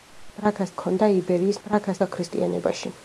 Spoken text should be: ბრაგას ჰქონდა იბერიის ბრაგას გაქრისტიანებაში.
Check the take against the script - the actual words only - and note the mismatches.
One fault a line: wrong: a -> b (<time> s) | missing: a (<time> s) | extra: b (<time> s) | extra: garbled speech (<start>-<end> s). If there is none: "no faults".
no faults